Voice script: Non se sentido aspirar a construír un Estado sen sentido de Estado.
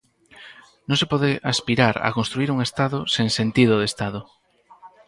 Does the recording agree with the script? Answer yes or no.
no